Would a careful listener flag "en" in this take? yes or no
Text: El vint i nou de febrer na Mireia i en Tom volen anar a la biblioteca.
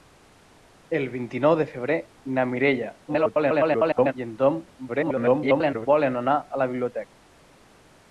no